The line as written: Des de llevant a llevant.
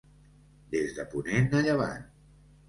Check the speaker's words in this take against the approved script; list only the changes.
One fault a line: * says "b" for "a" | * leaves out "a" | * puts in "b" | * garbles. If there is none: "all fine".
* says "ponent" for "llevant"